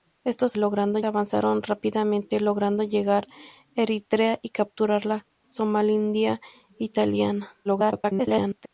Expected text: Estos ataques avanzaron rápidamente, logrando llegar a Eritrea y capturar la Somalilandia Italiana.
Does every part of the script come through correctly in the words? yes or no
no